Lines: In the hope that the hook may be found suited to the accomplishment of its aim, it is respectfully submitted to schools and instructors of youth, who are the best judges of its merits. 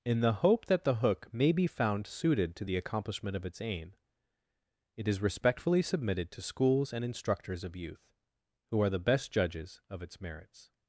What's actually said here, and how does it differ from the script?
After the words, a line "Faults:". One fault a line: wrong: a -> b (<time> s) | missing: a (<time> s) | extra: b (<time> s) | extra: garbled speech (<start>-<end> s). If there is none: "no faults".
In the hope that the hook may be found suited to the accomplishment of its aim, it is respectfully submitted to schools and instructors of youth, who are the best judges of its merits.
Faults:
no faults